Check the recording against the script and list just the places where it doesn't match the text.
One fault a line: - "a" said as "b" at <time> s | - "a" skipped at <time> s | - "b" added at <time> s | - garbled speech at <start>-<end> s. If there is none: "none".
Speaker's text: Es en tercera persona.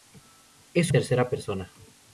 none